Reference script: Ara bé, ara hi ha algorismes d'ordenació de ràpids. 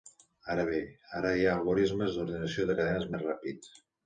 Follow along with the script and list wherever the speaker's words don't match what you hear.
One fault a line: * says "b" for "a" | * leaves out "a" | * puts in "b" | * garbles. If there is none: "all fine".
* puts in "cadenes més"